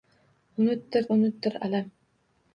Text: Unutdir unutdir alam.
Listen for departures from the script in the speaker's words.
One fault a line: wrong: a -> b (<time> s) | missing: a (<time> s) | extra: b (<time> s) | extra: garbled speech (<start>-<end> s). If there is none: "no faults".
no faults